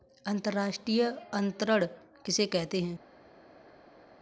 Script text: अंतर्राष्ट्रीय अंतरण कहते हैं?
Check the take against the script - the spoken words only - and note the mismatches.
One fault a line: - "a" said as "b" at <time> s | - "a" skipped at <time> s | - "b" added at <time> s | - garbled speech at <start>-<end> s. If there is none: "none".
- "किसे" added at 2.2 s